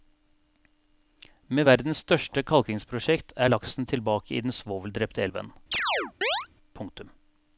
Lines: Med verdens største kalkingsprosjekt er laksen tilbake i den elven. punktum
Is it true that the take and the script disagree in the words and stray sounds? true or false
true